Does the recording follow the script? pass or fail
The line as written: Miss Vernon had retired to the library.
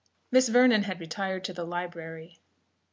pass